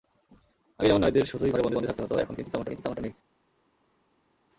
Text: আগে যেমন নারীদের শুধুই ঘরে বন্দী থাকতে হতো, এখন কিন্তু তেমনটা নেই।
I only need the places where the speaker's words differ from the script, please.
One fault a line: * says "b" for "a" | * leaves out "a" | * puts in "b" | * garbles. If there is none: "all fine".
* puts in "বন্দী"
* puts in "কিন্তু তেমনটা"